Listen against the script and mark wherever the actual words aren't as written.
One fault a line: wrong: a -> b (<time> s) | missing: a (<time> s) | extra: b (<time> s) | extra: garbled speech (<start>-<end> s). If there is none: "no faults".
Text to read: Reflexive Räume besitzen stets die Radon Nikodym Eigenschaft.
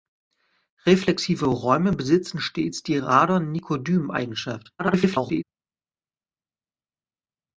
extra: garbled speech (4.8-5.4 s)